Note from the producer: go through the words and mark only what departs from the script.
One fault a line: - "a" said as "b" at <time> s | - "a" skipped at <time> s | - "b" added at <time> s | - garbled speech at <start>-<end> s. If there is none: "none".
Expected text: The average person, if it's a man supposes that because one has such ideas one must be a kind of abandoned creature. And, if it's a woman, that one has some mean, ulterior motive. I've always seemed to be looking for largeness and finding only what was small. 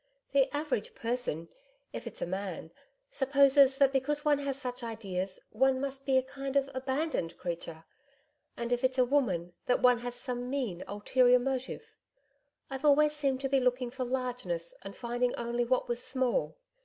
none